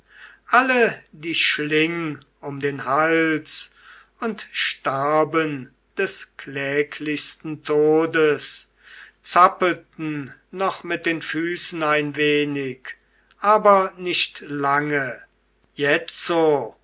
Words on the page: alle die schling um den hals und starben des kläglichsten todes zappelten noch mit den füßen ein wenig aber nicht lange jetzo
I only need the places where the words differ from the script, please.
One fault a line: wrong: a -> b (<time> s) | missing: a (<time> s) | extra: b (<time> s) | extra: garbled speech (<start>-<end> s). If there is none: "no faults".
no faults